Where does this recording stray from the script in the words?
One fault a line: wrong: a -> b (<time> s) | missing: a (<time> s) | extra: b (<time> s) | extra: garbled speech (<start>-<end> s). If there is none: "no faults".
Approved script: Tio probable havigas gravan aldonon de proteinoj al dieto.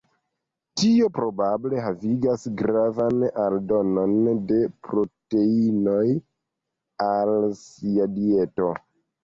extra: sia (7.7 s)